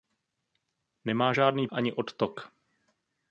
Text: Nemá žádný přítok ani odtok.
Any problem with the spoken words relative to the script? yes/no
yes